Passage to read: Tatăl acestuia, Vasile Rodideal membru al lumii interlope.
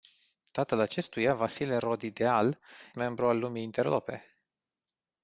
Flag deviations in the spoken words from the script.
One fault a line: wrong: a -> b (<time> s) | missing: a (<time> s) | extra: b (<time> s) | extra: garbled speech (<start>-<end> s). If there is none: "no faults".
no faults